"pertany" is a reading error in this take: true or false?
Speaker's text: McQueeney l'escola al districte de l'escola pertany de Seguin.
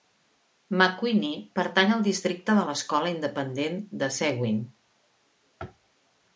true